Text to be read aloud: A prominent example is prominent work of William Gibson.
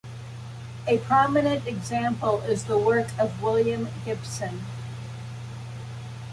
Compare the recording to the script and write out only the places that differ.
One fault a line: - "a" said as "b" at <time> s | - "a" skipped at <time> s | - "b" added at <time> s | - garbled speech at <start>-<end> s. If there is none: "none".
- "prominent" said as "the" at 2.6 s